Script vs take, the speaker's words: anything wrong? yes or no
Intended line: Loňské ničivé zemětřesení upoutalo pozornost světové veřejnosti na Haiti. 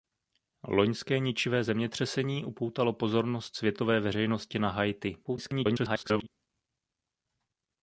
yes